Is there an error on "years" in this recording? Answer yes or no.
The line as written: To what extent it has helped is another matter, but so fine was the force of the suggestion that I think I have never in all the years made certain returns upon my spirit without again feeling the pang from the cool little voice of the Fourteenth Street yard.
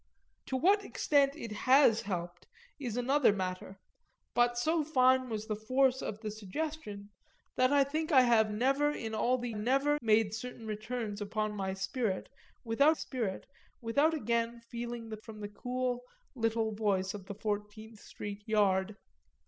yes